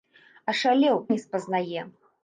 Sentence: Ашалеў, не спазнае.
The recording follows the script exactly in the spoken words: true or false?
true